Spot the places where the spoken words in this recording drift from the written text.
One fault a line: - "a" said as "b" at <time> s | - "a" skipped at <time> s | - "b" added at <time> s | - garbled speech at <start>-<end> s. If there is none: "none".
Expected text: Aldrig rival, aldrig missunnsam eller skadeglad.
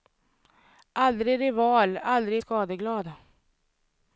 - "missunnsam eller" skipped at 2.4 s